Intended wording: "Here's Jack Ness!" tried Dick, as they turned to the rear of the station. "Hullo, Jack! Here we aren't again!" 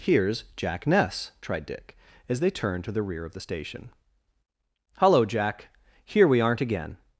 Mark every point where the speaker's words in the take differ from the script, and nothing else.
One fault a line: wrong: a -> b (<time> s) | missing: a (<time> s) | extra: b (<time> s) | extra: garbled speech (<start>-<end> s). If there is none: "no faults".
no faults